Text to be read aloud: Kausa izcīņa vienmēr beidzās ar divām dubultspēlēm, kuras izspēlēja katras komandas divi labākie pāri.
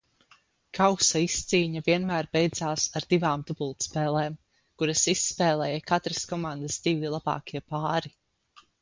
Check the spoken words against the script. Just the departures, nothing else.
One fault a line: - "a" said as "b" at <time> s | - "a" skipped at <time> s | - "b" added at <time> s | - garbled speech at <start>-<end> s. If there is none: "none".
none